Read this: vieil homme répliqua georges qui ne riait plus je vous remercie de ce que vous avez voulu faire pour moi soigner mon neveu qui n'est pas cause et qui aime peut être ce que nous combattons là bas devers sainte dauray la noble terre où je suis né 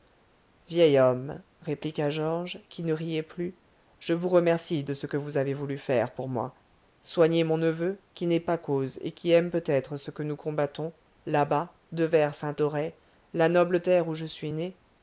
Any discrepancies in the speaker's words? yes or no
no